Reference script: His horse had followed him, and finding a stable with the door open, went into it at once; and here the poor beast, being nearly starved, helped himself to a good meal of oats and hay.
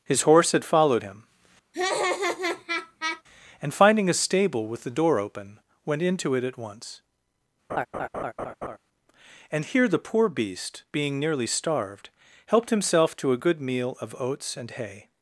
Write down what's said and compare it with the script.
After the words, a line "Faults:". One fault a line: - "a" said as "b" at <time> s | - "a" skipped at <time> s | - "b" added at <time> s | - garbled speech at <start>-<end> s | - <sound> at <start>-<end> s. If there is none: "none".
His horse had followed him, and finding a stable with the door open, went into it at once; and here the poor beast, being nearly starved, helped himself to a good meal of oats and hay.
Faults:
- laugh at 1.7-3.2 s
- laugh at 7.7-8.8 s